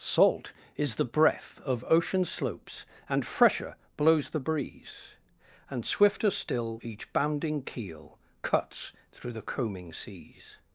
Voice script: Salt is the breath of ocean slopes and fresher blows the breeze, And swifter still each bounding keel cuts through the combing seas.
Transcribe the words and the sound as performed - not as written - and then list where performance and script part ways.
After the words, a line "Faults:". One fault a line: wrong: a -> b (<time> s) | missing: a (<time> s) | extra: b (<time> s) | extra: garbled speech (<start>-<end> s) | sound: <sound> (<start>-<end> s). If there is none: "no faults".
Salt is the breath of ocean slopes and fresher blows the breeze, And swifter still each bounding keel cuts through the combing seas.
Faults:
no faults